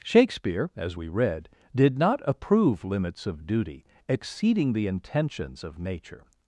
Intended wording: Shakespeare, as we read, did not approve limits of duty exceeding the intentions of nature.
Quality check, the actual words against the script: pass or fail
pass